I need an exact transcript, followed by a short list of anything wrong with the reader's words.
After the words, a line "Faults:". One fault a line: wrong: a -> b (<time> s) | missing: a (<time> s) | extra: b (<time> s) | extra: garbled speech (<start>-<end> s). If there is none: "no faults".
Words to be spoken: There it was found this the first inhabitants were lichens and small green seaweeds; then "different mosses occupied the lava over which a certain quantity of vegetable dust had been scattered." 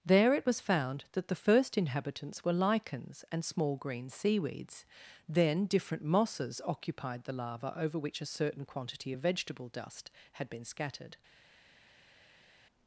There it was found that the first inhabitants were lichens and small green seaweeds; then "different mosses occupied the lava over which a certain quantity of vegetable dust had been scattered."
Faults:
wrong: this -> that (1.1 s)